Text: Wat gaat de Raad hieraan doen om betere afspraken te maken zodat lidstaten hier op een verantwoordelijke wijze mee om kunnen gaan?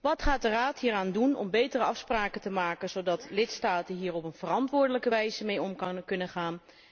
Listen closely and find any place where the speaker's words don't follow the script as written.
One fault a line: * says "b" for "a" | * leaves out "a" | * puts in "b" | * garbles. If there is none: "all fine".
all fine